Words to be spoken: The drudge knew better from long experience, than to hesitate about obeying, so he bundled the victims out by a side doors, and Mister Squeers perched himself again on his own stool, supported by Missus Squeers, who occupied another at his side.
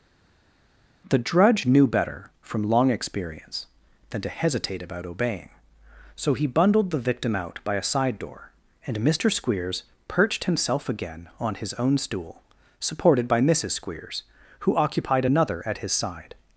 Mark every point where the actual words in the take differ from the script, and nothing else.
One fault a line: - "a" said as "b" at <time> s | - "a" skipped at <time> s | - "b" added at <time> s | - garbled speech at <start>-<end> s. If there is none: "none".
- "victims" said as "victim" at 7.0 s
- "doors" said as "door" at 8.2 s